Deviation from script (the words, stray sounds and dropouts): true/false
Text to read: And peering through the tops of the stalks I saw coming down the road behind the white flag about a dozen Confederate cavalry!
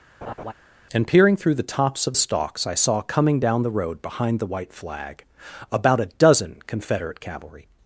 true